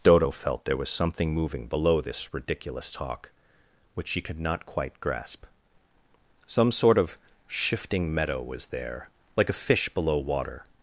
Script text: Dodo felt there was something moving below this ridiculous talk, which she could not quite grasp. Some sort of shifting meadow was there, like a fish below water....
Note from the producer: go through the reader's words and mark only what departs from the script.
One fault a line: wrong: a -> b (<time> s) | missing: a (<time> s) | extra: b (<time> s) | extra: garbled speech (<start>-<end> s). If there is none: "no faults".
no faults